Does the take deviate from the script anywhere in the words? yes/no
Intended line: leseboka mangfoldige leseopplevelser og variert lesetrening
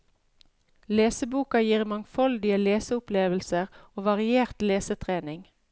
yes